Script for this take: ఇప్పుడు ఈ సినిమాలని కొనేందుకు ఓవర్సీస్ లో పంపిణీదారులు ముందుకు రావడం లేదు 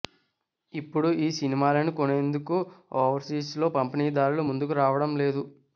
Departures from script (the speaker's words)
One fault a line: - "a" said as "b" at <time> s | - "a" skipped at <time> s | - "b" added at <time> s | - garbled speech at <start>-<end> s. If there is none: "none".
none